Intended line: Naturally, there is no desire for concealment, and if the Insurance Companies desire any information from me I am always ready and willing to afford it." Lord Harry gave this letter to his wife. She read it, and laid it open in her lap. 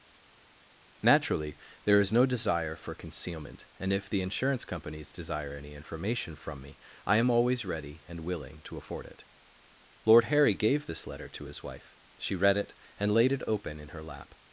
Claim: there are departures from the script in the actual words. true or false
false